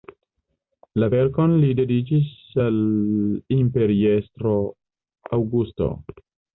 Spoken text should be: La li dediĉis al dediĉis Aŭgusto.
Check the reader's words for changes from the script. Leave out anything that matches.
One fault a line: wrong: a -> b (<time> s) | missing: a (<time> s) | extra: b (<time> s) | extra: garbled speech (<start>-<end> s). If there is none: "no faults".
extra: verkon (1.1 s)
wrong: dediĉis -> imperiestro (3.6 s)